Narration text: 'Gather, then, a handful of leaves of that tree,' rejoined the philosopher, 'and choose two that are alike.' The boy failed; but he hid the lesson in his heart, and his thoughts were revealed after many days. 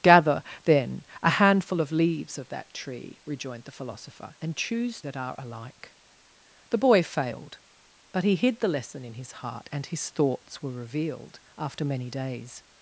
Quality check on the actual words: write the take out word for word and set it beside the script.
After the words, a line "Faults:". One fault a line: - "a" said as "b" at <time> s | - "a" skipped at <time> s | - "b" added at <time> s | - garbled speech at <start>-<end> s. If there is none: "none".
'Gather, then, a handful of leaves of that tree,' rejoined the philosopher, 'and choose that are alike.' The boy failed; but he hid the lesson in his heart, and his thoughts were revealed after many days.
Faults:
- "two" skipped at 5.0 s